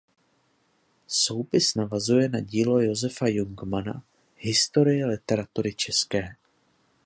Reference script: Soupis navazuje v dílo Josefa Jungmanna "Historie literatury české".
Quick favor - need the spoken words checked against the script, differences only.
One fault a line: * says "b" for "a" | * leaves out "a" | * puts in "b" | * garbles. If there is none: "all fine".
* says "na" for "v"